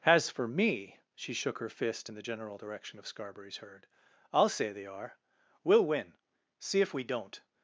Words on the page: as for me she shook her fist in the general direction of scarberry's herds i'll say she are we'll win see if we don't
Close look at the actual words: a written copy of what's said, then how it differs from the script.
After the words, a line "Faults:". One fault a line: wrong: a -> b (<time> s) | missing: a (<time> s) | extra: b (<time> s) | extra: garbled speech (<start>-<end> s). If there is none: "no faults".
as for me she shook her fist in the general direction of scarberry's herd i'll say they are we'll win see if we don't
Faults:
wrong: herds -> herd (3.6 s)
wrong: she -> they (4.7 s)